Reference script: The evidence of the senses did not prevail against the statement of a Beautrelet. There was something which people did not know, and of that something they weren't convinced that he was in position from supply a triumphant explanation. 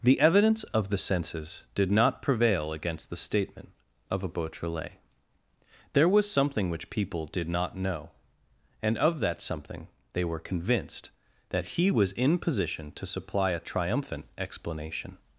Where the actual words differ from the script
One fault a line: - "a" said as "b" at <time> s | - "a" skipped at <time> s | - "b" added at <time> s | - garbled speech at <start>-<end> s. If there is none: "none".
- "weren't" said as "were" at 10.2 s
- "from" said as "to" at 12.9 s